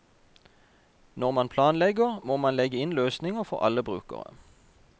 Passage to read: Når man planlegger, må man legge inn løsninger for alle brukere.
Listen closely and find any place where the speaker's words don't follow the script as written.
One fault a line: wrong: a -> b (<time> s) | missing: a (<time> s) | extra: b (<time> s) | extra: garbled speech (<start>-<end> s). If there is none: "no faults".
no faults